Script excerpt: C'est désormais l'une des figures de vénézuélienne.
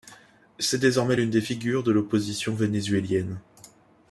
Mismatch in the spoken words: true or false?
true